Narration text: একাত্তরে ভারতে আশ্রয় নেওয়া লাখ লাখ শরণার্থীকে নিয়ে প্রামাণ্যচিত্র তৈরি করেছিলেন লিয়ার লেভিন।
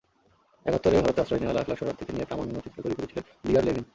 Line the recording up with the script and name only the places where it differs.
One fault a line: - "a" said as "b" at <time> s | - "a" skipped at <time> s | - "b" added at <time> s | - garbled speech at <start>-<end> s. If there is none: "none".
none